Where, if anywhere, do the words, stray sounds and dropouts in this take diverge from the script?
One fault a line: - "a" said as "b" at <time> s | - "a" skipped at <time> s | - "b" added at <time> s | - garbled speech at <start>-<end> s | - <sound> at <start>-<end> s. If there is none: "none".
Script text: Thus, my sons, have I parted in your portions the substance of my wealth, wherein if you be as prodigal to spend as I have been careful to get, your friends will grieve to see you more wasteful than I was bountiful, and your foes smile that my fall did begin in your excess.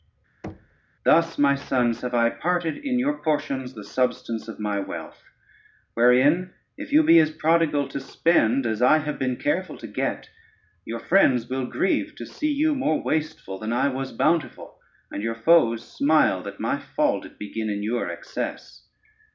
- thud at 0.4-0.8 s